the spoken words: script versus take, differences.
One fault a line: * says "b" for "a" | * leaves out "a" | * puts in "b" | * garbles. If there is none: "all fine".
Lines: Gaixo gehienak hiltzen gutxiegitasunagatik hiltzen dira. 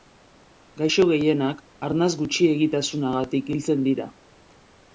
* says "arnas" for "hiltzen"